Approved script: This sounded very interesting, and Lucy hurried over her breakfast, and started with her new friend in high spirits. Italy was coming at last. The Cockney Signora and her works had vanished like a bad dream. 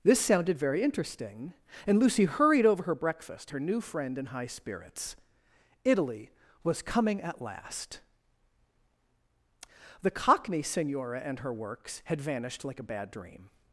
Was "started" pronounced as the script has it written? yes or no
no